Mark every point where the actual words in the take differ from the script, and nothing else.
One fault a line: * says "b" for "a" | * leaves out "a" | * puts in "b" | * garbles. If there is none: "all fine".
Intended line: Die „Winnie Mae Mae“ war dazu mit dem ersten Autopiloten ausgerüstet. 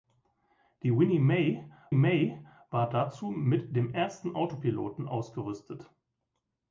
all fine